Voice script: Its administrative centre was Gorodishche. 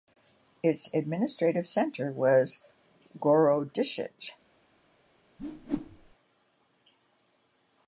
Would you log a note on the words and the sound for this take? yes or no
yes